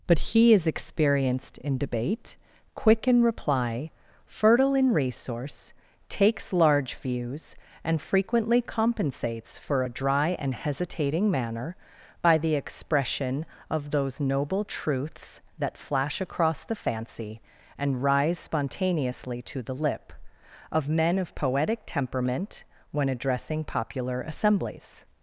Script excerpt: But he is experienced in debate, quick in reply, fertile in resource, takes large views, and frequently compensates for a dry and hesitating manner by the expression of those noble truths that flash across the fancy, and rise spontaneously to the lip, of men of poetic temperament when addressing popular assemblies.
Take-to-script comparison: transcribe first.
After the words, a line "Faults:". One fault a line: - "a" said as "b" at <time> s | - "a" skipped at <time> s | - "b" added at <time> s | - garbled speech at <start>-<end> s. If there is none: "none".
But he is experienced in debate, quick in reply, fertile in resource, takes large views, and frequently compensates for a dry and hesitating manner by the expression of those noble truths that flash across the fancy, and rise spontaneously to the lip, of men of poetic temperament when addressing popular assemblies.
Faults:
none